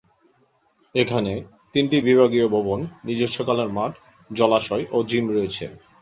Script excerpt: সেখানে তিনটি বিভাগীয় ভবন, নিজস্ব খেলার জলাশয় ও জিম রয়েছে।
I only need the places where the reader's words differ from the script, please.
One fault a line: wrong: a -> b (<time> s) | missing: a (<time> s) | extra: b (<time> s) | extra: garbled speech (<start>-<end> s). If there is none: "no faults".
wrong: সেখানে -> এখানে (0.9 s)
extra: মাঠ (3.7 s)